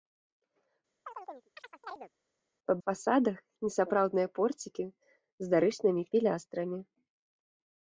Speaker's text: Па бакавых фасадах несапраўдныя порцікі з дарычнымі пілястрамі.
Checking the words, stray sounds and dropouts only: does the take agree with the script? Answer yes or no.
no